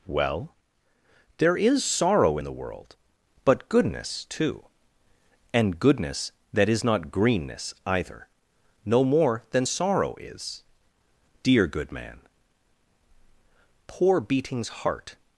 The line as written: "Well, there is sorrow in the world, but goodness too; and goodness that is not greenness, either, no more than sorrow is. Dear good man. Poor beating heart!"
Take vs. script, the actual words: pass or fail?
fail